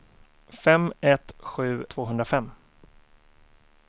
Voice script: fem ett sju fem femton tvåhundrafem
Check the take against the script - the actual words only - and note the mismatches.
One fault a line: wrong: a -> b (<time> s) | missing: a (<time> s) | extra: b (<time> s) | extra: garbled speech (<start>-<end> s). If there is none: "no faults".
missing: fem femton (1.9 s)